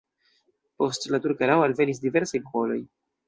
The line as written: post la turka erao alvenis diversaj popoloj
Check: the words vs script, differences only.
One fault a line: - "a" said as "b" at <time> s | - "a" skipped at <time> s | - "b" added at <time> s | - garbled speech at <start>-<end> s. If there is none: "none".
none